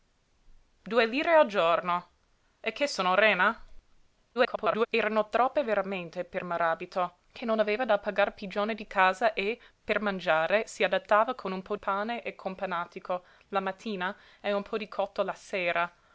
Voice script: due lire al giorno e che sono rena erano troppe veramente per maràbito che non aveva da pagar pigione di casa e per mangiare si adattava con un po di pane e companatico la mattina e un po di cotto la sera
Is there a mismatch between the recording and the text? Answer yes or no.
yes